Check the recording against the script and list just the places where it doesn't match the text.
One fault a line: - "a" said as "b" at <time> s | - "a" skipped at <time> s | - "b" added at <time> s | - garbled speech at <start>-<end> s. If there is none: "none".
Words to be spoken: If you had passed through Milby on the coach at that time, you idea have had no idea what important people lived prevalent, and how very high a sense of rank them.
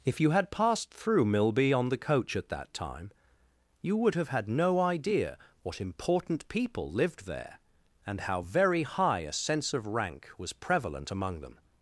- "idea" said as "would" at 4.0 s
- "prevalent" said as "there" at 7.3 s
- "was prevalent among" added at 10.4 s